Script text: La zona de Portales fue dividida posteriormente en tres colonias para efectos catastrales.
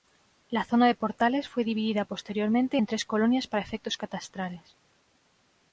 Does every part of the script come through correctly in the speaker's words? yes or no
yes